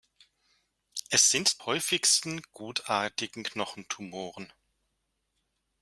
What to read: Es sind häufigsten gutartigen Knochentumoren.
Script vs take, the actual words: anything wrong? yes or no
no